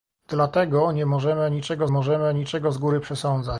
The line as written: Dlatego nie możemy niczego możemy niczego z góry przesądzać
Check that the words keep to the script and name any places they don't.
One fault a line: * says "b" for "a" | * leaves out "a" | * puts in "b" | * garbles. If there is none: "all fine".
all fine